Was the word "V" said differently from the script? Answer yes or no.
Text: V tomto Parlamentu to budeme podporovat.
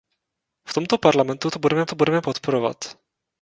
no